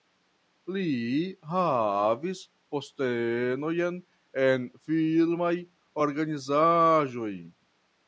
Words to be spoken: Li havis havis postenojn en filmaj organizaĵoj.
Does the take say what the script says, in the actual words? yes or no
no